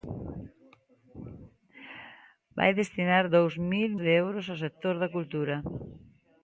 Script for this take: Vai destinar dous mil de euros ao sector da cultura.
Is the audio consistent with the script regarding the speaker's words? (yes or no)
yes